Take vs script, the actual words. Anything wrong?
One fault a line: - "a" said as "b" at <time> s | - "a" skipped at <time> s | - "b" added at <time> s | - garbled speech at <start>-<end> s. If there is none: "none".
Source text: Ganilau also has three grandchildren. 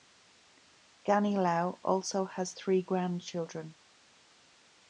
none